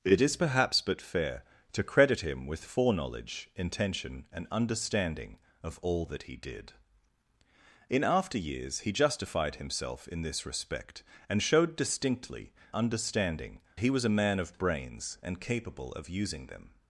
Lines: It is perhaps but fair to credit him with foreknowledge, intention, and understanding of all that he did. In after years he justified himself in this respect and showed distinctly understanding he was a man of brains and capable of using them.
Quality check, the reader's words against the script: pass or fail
pass